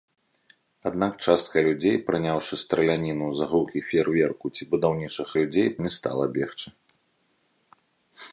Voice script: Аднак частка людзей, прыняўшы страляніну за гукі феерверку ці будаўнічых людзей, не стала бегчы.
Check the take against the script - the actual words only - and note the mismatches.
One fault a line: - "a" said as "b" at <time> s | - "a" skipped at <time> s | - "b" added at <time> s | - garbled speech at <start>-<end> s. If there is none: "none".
none